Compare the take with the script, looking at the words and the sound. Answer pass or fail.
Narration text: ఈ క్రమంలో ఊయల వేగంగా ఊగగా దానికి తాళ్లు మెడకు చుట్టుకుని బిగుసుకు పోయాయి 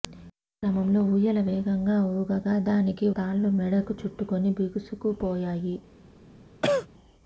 fail